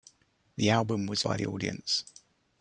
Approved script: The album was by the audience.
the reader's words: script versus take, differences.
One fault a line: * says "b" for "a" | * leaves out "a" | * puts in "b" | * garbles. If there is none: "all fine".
all fine